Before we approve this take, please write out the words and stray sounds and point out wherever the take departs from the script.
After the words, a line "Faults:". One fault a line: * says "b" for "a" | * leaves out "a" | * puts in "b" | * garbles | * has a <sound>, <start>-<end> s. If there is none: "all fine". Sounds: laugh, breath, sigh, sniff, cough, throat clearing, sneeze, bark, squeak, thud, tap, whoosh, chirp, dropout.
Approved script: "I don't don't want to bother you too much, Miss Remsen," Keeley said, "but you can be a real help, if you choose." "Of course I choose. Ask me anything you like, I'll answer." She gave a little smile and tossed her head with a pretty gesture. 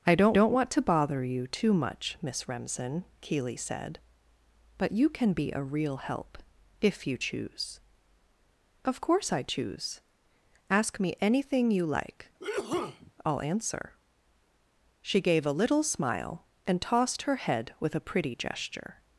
"I don't don't want to bother you too much, Miss Remsen," Keeley said, "but you can be a real help, if you choose." "Of course I choose. Ask me anything you like, I'll answer." She gave a little smile and tossed her head with a pretty gesture.
Faults:
* has a sneeze, 12.4-13.1 s